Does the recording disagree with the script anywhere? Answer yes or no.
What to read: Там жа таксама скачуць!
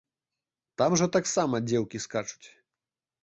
yes